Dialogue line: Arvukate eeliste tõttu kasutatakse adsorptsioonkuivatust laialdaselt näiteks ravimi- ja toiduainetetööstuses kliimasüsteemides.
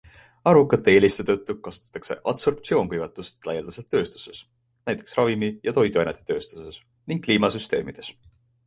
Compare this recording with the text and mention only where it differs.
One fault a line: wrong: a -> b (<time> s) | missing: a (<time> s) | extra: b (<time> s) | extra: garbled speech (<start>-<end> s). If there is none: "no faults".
extra: tööstuses (4.0 s)
extra: ning (7.1 s)